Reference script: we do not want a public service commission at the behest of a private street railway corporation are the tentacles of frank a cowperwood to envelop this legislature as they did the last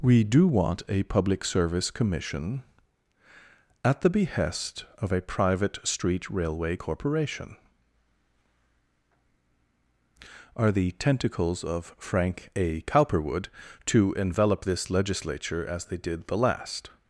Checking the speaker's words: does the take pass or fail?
fail